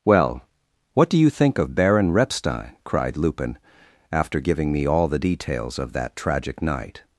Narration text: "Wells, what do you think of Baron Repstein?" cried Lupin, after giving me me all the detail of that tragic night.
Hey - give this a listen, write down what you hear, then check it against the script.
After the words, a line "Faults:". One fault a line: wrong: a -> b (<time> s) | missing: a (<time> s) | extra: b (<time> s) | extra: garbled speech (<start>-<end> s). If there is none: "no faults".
"Well, what do you think of Baron Repstein?" cried Lupin, after giving me all the details of that tragic night.
Faults:
wrong: Wells -> Well (0.0 s)
missing: me (4.8 s)
wrong: detail -> details (5.2 s)